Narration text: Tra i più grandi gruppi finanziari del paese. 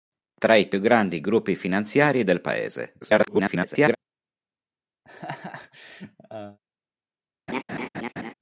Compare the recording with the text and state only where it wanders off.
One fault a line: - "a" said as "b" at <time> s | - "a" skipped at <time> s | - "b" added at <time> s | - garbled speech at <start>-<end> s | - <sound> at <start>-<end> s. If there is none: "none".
- garbled speech at 3.0-4.0 s
- laugh at 5.0-6.6 s
- laugh at 7.5-8.3 s